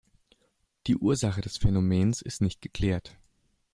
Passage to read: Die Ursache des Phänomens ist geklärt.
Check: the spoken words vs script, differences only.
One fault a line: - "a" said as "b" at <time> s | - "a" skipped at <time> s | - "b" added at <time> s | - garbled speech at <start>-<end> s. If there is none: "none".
- "nicht" added at 2.4 s